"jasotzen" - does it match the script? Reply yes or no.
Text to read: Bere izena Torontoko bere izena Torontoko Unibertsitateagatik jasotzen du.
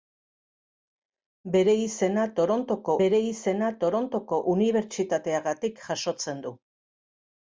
yes